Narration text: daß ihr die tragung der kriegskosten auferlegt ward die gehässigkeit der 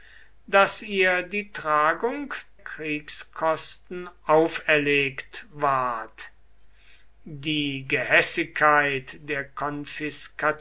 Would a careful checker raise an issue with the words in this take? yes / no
yes